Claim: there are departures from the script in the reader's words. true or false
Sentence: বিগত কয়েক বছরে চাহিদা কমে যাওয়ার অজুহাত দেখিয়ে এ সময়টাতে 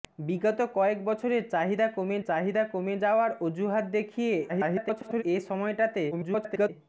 true